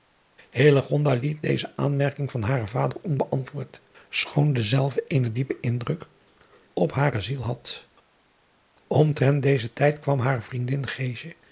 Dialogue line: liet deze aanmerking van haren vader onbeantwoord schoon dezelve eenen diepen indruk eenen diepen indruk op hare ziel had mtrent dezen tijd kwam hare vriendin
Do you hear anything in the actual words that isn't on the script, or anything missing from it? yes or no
yes